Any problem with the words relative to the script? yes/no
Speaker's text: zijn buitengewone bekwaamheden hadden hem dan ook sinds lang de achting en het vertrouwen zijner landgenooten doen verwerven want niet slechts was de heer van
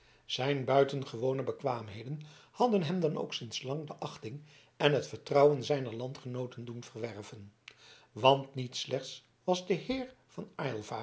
no